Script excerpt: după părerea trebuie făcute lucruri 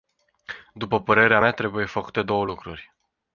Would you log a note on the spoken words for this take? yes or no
yes